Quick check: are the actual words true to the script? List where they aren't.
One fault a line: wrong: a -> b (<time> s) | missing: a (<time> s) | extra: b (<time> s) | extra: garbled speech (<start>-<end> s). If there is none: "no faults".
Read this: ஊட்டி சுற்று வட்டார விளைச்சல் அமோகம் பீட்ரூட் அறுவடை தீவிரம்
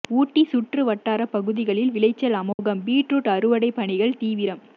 extra: பகுதிகளில் (1.2 s)
extra: பணிகள் (3.7 s)